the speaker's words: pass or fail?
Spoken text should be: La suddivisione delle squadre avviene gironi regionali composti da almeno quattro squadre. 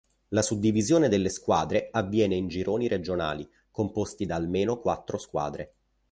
fail